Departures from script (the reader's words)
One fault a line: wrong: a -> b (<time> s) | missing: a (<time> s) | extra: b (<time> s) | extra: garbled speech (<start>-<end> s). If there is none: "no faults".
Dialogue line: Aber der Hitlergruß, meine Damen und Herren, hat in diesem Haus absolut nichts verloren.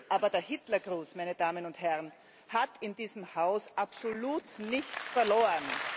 no faults